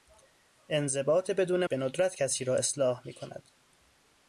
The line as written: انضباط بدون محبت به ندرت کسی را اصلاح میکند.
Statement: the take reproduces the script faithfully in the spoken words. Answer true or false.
false